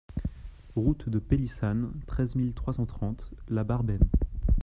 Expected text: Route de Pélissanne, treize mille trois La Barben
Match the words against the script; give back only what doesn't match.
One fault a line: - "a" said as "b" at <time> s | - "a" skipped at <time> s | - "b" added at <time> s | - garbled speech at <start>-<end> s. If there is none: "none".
- "cent trente" added at 2.7 s